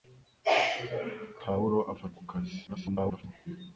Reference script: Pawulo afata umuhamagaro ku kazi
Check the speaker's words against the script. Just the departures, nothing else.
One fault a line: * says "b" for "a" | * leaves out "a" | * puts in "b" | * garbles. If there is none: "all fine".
* leaves out "umuhamagaro"
* garbles